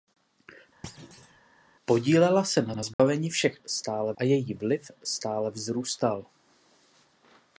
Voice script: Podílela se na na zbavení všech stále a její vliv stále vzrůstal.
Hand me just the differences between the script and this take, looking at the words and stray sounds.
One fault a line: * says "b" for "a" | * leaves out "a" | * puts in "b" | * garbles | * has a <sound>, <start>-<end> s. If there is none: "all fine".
* has a thud, 0.8-1.4 s
* has a dropout, 2.9-3.0 s